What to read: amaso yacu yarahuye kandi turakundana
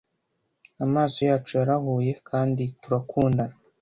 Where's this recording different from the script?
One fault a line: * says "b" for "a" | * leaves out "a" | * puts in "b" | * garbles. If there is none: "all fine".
all fine